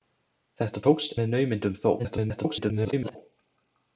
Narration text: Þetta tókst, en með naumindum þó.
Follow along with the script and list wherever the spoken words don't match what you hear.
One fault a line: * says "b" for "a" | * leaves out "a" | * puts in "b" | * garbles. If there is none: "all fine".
* leaves out "en"
* garbles